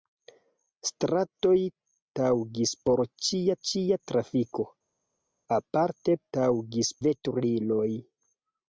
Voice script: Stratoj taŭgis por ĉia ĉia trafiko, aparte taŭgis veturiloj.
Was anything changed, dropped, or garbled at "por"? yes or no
no